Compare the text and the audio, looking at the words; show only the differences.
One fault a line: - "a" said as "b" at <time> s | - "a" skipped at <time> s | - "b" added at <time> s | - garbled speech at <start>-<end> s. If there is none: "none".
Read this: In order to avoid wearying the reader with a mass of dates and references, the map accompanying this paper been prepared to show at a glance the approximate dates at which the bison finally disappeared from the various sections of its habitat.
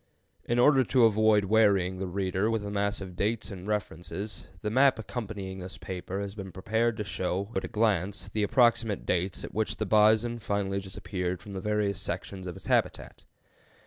- "has" added at 6.2 s